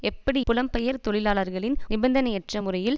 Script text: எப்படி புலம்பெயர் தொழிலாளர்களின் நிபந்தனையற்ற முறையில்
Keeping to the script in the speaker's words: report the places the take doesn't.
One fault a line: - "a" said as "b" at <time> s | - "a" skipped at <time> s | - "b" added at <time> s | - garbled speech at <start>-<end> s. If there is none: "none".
none